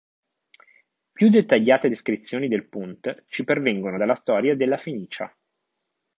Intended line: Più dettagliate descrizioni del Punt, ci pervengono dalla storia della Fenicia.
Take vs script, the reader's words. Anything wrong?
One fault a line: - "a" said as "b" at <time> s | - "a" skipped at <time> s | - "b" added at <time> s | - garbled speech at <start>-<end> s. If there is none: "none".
none